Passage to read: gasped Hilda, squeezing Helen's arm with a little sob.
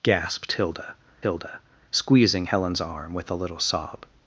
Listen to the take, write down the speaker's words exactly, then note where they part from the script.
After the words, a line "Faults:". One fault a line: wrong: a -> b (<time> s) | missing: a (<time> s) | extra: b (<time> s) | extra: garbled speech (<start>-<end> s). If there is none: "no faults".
gasped Hilda Hilda, squeezing Helen's arm with a little sob.
Faults:
extra: Hilda (1.2 s)